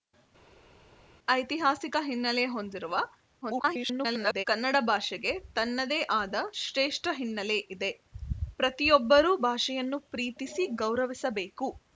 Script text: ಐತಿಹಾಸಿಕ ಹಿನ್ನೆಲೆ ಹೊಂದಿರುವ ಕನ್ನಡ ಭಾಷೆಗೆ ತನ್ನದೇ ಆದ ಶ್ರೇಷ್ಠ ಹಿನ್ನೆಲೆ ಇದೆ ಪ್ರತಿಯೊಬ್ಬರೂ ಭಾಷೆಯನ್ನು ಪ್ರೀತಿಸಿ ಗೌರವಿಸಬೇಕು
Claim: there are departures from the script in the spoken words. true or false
true